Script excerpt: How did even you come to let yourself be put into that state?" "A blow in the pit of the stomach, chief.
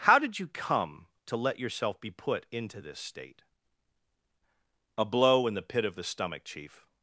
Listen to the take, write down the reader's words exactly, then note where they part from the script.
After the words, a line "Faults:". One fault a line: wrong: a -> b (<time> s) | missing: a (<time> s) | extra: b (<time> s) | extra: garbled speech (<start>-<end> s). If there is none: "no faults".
How did you come to let yourself be put into this state?" "A blow in the pit of the stomach, chief.
Faults:
missing: even (0.4 s)
wrong: that -> this (2.8 s)